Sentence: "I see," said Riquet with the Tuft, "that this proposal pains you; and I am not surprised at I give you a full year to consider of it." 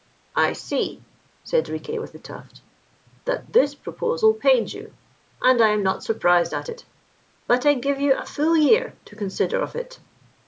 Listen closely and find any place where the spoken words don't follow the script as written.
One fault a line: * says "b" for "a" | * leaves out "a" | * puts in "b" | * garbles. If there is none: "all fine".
* puts in "it but"